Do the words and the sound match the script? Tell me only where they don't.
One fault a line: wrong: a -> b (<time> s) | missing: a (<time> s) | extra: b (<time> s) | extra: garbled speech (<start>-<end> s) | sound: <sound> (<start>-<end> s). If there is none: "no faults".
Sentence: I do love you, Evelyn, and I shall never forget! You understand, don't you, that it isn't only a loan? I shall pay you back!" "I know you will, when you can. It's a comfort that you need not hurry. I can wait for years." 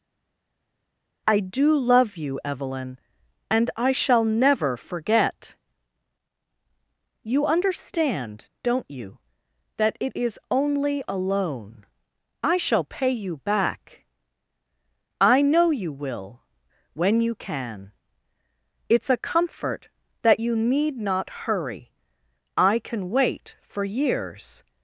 wrong: isn't -> is (10.1 s)